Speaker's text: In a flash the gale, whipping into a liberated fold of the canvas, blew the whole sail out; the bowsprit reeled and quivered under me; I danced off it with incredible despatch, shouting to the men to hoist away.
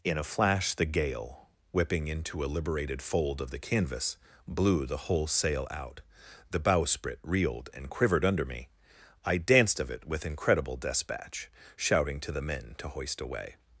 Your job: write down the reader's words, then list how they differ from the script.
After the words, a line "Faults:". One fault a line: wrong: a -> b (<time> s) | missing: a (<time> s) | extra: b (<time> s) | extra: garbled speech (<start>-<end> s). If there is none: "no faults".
In a flash the gale, whipping into a liberated fold of the canvas, blew the whole sail out; the bowsprit reeled and quivered under me; I danced of it with incredible despatch, shouting to the men to hoist away.
Faults:
wrong: off -> of (9.8 s)